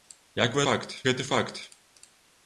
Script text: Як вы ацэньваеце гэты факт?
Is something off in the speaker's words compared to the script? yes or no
yes